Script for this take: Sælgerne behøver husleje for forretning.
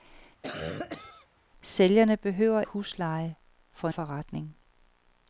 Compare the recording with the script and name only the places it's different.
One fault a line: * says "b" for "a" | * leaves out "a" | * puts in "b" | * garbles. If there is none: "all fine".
all fine